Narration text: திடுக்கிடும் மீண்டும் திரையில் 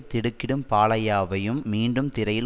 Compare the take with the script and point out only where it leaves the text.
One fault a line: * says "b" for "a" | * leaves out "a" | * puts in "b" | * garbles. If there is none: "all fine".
* puts in "பாலையாவையும்"